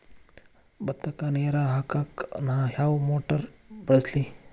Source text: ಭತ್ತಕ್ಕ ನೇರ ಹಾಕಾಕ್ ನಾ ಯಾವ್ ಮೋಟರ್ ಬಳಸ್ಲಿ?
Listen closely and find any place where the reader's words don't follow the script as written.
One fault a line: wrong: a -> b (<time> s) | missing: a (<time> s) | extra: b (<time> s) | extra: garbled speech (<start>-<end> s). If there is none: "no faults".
no faults